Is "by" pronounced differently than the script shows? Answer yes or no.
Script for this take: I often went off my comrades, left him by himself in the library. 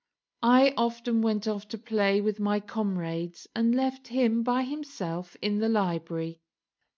no